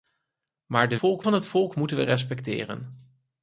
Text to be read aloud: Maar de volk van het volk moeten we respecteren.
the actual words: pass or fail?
pass